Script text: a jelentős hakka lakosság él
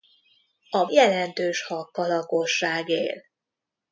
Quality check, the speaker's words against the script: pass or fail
pass